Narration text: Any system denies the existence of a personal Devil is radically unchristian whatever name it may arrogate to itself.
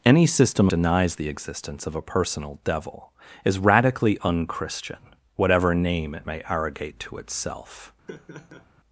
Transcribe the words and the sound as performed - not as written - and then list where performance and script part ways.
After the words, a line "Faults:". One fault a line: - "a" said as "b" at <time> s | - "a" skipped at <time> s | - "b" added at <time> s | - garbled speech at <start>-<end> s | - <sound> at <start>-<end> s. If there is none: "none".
Any system denies the existence of a personal Devil is radically unchristian whatever name it may arrogate to itself.
Faults:
- laugh at 8.1-8.7 s